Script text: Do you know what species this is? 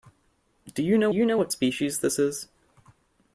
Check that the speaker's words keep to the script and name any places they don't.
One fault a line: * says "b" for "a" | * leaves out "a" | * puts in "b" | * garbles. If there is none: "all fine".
* puts in "you know"